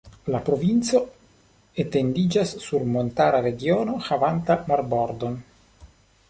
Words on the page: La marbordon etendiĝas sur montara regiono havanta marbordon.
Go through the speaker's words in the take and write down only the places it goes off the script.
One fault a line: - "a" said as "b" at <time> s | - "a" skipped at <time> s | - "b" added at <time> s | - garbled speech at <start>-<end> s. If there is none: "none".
- "marbordon" said as "provinco" at 0.5 s